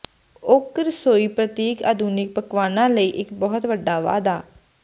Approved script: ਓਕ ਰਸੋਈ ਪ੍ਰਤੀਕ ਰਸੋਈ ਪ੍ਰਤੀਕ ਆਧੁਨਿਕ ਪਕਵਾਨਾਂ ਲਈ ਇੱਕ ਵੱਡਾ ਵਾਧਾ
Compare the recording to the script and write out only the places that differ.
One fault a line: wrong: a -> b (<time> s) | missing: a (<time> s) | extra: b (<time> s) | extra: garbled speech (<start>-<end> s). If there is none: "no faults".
missing: ਰਸੋਈ ਪ੍ਰਤੀਕ (1.8 s)
extra: ਬਹੁਤ (3.4 s)